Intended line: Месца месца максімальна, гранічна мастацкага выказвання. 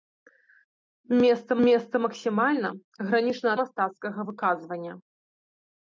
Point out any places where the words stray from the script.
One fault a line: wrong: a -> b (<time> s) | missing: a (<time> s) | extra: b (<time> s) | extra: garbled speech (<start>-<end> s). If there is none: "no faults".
no faults